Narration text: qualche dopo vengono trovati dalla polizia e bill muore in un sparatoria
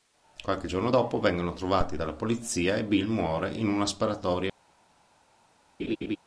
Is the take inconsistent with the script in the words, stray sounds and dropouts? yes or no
yes